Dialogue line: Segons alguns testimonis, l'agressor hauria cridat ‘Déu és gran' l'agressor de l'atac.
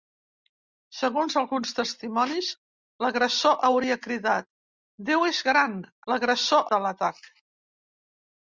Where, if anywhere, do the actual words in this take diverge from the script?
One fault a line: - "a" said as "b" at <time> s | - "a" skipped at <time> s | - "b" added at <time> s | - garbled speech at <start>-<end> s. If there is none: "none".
none